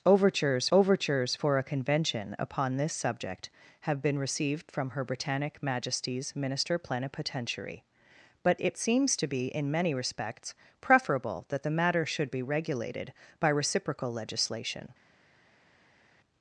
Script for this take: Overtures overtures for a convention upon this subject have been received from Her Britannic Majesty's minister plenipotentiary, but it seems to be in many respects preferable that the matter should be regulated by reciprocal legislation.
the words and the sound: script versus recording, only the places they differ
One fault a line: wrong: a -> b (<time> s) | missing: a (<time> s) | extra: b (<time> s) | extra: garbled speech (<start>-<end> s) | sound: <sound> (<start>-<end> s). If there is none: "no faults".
no faults